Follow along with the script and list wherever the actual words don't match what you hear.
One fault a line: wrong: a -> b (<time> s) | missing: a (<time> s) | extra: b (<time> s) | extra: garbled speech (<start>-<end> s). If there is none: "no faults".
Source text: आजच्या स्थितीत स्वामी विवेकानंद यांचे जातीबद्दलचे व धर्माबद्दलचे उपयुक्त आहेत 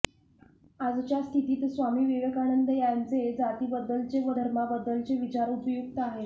extra: विचार (5.2 s)